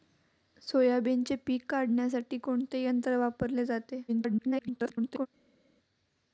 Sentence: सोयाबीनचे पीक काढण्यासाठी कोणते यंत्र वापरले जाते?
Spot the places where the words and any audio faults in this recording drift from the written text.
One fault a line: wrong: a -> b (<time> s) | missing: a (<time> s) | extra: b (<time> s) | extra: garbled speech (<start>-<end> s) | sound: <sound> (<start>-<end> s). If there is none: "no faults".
extra: garbled speech (4.1-5.3 s)